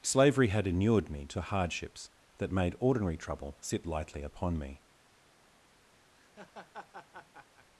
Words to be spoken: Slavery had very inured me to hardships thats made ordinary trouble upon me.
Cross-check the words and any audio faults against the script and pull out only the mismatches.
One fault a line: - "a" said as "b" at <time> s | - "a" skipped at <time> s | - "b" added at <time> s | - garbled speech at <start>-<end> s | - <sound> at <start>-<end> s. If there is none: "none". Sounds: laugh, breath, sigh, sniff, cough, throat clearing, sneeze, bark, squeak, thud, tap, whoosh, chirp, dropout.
- "very" skipped at 0.7 s
- "thats" said as "that" at 2.4 s
- "sit lightly" added at 3.6 s
- laugh at 6.1-7.7 s